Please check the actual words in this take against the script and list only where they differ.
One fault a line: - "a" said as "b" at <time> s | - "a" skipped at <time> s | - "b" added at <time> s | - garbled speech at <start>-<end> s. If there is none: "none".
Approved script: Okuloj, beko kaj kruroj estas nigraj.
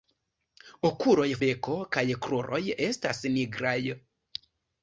none